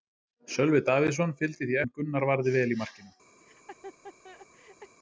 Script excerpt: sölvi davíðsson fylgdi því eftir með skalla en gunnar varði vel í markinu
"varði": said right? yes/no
yes